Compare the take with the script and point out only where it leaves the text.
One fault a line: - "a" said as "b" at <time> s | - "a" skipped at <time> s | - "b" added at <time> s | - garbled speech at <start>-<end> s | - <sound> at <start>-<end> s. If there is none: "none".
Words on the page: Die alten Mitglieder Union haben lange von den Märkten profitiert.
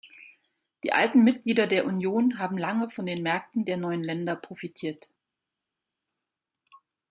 - "der" added at 1.7 s
- "der neuen Länder" added at 3.6 s